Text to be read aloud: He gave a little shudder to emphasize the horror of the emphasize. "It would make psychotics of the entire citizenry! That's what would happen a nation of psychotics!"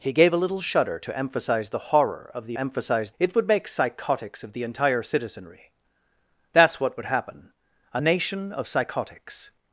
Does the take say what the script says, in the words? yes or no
yes